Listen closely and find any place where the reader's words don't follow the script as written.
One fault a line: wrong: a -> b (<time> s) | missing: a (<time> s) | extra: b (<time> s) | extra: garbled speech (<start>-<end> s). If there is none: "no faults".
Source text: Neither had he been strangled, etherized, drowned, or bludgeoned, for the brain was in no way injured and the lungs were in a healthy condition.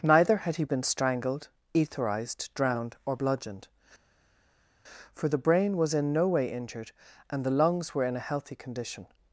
no faults